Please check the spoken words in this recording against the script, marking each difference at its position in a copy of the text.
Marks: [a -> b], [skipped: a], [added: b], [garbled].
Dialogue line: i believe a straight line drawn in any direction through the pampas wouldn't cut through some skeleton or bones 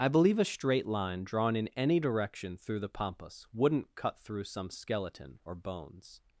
i believe a straight line drawn in any direction through the pampas wouldn't cut through some skeleton or bones